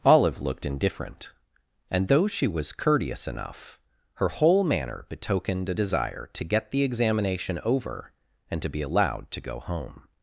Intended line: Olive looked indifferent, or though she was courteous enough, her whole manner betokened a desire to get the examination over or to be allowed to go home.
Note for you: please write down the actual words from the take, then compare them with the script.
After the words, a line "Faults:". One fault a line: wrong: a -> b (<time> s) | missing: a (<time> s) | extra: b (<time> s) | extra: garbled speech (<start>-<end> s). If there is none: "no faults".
Olive looked indifferent, and though she was courteous enough, her whole manner betokened a desire to get the examination over and to be allowed to go home.
Faults:
wrong: or -> and (1.9 s)
wrong: or -> and (8.5 s)